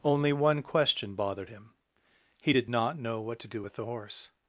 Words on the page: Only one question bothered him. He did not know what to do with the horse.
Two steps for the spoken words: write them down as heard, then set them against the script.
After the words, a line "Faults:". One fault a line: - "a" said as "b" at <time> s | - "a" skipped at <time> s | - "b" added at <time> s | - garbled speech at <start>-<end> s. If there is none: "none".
Only one question bothered him. He did not know what to do with the horse.
Faults:
none